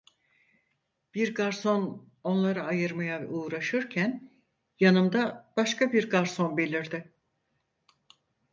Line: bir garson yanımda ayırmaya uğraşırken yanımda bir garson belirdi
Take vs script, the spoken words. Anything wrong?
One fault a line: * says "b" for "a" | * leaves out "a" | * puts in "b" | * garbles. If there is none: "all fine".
* says "onları" for "yanımda"
* puts in "başka"